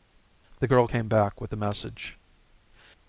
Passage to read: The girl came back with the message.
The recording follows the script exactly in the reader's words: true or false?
true